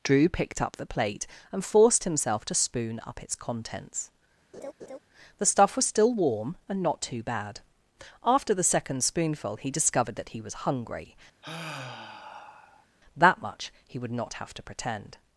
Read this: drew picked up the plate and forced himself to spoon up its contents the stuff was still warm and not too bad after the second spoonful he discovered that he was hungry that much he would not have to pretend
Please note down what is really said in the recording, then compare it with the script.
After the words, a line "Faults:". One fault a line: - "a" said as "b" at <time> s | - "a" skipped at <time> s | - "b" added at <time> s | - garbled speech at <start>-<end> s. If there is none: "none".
drew picked up the plate and forced himself to spoon up its contents the stuff was still warm and not too bad after the second spoonful he discovered that he was hungry that much he would not have to pretend
Faults:
none